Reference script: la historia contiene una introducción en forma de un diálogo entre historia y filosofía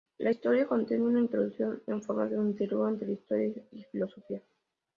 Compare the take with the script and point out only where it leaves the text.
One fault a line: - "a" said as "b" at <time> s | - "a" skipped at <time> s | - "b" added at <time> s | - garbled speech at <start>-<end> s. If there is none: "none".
none